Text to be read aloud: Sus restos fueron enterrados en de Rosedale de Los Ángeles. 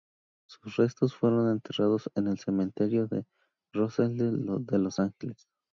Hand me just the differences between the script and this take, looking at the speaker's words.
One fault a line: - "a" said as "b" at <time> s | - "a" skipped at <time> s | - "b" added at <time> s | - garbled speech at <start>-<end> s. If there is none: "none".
- "el Cementerio" added at 2.2 s